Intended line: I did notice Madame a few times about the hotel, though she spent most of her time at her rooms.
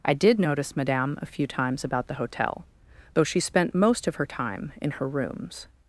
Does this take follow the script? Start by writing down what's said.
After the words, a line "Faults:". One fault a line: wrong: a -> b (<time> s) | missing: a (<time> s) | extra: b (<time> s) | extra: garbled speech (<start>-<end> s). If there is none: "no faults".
I did notice Madame a few times about the hotel, though she spent most of her time in her rooms.
Faults:
wrong: at -> in (4.8 s)